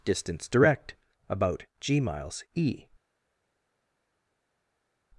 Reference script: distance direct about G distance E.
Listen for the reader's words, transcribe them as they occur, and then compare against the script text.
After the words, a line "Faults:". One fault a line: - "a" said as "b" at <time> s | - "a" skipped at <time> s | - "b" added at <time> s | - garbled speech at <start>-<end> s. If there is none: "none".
distance direct about G miles E.
Faults:
- "distance" said as "miles" at 2.0 s